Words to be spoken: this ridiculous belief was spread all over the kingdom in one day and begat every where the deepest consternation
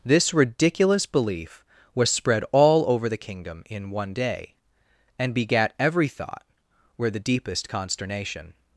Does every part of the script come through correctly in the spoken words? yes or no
no